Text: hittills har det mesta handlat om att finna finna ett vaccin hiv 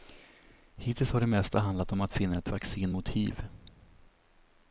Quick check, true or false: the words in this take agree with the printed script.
false